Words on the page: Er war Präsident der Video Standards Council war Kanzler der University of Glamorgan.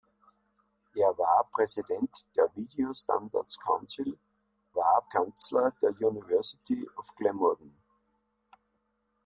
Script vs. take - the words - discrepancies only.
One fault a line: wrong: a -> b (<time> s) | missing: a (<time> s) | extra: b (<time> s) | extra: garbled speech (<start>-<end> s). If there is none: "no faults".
no faults